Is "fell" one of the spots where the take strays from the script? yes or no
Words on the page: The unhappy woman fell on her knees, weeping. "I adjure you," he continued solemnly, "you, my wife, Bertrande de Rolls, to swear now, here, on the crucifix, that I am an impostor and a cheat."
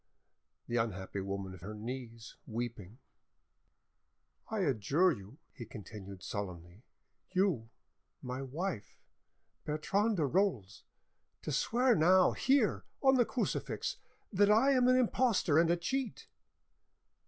yes